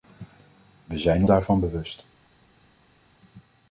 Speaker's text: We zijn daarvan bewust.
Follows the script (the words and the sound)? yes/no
yes